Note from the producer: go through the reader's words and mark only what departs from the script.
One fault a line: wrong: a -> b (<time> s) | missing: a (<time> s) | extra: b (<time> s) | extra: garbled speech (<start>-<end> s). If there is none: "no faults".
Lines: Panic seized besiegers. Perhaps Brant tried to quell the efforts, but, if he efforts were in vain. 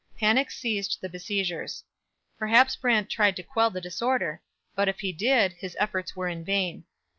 extra: the (1.0 s)
wrong: efforts -> disorder (3.8 s)
extra: did his (5.1 s)